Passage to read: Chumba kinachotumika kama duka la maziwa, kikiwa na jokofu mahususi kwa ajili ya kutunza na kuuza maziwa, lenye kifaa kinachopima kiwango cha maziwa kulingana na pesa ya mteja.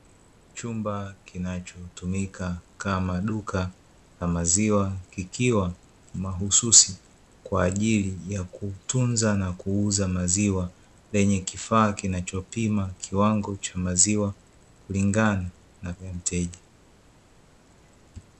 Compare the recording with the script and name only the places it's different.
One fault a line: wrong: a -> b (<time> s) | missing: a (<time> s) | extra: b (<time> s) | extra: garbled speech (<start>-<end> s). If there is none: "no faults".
missing: na jokofu (5.7 s)
missing: pesa (15.9 s)